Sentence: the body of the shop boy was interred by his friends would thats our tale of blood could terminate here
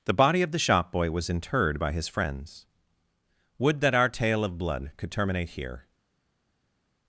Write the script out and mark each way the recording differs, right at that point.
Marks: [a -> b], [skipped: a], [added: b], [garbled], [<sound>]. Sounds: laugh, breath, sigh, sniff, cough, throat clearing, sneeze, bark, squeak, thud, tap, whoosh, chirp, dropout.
the body of the shop boy was interred by his friends would [thats -> that] our tale of blood could terminate here